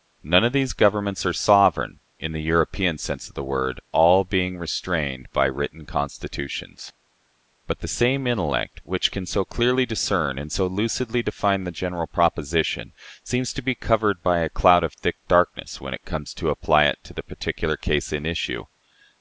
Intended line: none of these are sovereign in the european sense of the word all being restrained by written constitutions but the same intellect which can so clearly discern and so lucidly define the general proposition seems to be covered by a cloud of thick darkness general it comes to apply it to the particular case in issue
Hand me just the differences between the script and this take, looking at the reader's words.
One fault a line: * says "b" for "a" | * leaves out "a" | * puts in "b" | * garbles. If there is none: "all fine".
* puts in "governments"
* says "when" for "general"